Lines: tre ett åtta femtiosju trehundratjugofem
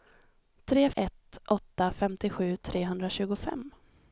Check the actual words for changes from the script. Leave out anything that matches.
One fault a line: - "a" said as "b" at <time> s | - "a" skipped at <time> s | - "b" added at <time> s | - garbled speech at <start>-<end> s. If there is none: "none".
none